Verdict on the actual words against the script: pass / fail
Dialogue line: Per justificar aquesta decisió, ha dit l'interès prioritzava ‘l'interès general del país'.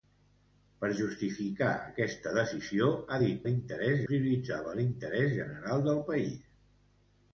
pass